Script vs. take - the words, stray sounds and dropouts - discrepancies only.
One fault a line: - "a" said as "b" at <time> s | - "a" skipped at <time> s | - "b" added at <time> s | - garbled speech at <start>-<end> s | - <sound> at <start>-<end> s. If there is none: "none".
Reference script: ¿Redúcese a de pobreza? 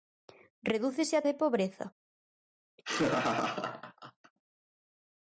- laugh at 2.8-4.3 s